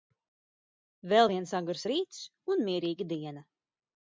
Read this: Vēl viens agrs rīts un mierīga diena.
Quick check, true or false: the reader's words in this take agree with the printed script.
true